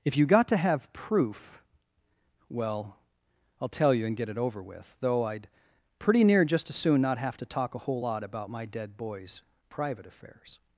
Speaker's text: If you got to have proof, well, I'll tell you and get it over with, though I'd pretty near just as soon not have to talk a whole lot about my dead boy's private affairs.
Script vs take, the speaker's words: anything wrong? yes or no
no